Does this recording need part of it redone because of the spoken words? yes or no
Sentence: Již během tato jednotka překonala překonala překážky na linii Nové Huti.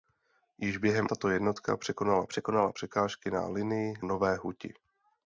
no